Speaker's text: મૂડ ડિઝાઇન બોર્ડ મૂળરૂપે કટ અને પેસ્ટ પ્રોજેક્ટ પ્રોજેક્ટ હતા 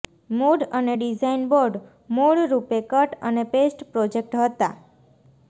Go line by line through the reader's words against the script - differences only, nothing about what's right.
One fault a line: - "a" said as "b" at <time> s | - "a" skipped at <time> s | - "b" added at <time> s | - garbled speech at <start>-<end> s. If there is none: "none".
- "અને" added at 0.7 s
- "પ્રોજેક્ટ" skipped at 4.4 s